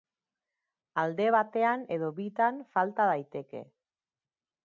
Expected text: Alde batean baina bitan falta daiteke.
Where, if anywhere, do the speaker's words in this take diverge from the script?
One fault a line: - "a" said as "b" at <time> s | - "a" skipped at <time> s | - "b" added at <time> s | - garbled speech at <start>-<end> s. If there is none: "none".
- "baina" said as "edo" at 2.0 s